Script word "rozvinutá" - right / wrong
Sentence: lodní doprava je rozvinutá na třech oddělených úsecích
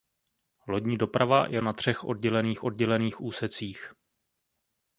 wrong